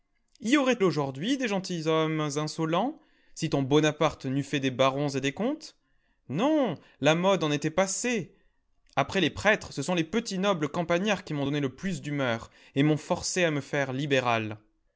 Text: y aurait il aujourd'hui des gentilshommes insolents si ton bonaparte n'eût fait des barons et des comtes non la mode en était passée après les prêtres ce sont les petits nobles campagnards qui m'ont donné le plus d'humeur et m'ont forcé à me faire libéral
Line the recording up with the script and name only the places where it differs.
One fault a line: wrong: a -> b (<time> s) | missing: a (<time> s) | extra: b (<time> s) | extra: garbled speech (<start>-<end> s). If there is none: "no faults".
missing: il (0.8 s)